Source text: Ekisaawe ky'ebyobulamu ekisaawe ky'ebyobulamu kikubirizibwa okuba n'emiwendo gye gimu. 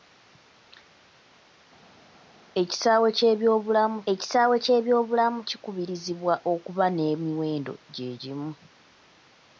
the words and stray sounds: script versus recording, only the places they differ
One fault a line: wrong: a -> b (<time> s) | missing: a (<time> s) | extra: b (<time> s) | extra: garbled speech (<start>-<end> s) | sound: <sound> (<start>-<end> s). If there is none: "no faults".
no faults